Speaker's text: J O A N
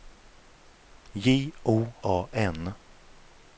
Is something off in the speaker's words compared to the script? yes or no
no